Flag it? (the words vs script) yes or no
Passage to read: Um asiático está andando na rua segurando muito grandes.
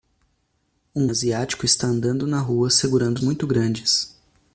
no